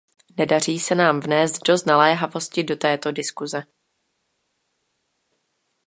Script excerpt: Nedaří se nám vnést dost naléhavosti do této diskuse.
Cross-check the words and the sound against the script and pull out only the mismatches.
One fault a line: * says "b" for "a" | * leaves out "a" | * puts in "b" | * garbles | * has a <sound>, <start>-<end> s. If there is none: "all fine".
all fine